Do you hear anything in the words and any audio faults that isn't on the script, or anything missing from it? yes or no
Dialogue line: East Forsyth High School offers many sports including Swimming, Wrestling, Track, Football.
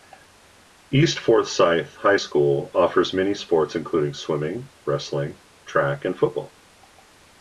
yes